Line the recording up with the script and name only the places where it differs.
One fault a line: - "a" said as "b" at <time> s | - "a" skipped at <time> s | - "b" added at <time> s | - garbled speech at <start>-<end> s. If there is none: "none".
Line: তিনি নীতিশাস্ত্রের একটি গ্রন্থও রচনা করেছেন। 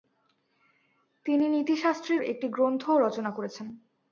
none